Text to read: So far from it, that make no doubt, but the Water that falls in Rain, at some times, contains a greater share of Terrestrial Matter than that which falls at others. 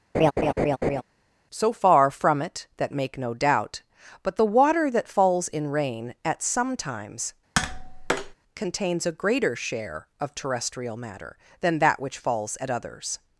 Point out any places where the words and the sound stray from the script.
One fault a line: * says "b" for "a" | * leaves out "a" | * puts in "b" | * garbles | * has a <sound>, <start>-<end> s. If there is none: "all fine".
* has a laugh, 0.1-1.0 s
* has a tap, 7.5-8.3 s